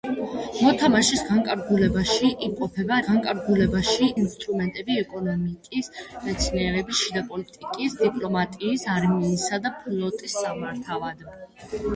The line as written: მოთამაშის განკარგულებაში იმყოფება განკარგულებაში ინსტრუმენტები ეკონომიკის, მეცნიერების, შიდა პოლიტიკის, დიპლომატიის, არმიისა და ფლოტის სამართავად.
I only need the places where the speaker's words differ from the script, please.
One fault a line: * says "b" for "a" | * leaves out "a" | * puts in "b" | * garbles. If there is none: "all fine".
all fine